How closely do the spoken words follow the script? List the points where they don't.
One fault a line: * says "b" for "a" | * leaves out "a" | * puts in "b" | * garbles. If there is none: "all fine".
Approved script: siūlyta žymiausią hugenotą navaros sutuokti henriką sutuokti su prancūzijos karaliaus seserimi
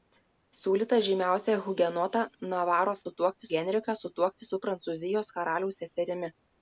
all fine